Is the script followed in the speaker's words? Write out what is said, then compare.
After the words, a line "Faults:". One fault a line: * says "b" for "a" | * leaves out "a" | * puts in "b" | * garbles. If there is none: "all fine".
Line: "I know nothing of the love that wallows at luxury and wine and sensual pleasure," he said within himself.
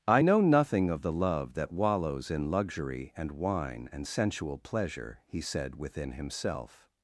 "I know nothing of the love that wallows in luxury and wine and sensual pleasure," he said within himself.
Faults:
* says "in" for "at"